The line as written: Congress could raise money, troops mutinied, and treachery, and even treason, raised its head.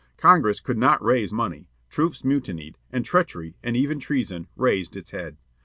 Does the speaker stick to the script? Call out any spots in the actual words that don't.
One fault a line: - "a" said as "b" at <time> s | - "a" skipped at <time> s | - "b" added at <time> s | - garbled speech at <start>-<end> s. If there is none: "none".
- "not" added at 0.8 s